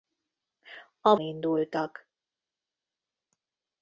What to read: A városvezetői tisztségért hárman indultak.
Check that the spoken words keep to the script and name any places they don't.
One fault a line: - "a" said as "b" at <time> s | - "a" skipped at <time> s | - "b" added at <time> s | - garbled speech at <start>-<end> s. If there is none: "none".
- "városvezetői tisztségért hárman" skipped at 1.1 s